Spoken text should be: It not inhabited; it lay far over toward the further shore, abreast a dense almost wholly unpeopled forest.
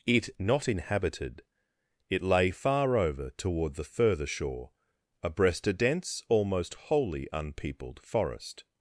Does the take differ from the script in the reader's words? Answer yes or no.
no